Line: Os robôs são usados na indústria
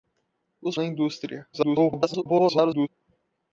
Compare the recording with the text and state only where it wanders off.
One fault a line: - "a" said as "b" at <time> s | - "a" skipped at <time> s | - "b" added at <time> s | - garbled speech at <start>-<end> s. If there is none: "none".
- "robôs são usados" skipped at 0.8 s
- garbled speech at 1.5-2.9 s